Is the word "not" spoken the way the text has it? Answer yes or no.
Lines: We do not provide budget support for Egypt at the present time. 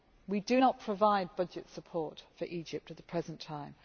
yes